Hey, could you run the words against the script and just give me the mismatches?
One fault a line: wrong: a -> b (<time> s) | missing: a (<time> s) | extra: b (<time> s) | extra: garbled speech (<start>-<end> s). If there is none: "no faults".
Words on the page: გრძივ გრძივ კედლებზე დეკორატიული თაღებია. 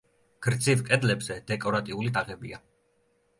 missing: გრძივ (0.8 s)